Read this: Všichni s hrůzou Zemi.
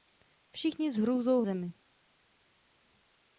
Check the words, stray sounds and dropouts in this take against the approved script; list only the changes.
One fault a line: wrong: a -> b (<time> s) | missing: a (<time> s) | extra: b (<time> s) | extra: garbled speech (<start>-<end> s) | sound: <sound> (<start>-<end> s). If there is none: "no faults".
no faults